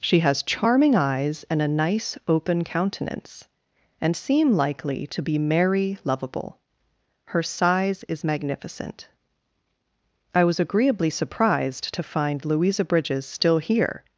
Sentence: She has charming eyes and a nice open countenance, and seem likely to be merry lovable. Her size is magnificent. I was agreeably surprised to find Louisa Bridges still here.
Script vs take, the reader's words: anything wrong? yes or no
no